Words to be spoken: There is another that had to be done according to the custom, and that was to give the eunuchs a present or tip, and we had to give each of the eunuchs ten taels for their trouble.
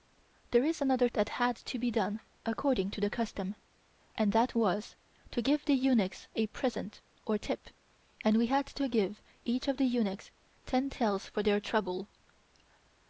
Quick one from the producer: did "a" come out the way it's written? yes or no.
yes